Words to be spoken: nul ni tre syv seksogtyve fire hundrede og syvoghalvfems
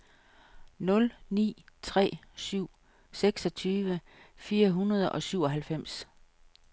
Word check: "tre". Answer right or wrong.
right